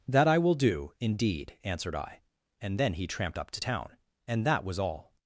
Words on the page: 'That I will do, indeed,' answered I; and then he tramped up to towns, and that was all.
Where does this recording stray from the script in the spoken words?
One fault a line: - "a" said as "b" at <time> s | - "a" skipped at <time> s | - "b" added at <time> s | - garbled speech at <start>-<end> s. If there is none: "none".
- "towns" said as "town" at 3.6 s